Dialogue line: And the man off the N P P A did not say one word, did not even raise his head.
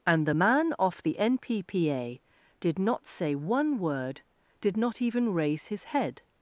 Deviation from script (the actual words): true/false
false